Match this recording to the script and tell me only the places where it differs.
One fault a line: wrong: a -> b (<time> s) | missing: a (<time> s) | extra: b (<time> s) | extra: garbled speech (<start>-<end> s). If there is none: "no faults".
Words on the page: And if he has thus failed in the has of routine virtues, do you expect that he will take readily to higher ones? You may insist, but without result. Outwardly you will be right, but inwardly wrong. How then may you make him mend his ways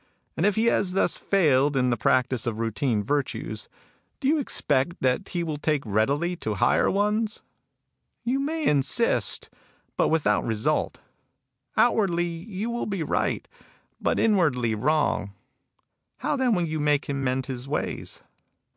wrong: has -> practice (2.0 s)
wrong: may -> will (16.5 s)